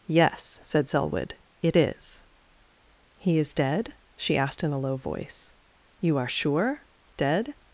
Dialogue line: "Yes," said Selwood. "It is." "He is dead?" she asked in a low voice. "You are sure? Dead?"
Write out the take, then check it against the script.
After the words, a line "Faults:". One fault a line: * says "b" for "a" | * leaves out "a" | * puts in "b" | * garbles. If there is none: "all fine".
"Yes," said Selwood. "It is." "He is dead?" she asked in a low voice. "You are sure? Dead?"
Faults:
all fine